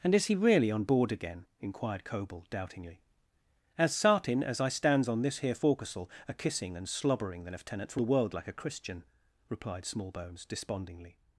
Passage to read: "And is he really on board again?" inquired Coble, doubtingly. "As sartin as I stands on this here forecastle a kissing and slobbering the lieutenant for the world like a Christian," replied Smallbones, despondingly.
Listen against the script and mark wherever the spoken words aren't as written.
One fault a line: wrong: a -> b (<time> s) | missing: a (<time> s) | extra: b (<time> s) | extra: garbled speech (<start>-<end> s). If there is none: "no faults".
no faults